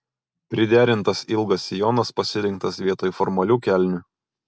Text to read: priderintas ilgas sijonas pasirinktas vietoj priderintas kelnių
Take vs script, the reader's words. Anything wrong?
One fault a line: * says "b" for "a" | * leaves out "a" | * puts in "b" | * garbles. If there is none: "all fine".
* says "formalių" for "priderintas"